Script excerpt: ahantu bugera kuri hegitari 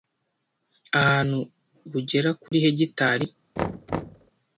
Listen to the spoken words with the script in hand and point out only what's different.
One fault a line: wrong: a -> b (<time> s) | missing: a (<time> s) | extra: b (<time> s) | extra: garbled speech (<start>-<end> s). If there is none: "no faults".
no faults